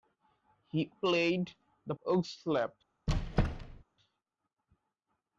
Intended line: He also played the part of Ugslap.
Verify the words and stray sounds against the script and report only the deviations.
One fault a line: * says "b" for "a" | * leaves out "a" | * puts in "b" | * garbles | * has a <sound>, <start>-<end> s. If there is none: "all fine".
* leaves out "also"
* leaves out "part of"
* has a squeak, 3.1-3.8 s